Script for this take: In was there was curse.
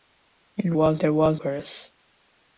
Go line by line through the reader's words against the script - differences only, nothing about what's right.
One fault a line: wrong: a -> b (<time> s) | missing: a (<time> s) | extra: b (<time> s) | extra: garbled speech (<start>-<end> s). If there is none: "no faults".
no faults